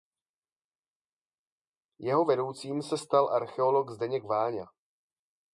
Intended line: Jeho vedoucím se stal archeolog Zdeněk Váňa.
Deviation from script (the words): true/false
false